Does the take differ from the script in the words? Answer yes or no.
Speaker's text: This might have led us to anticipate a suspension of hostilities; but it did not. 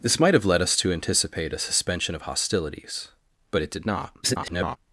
yes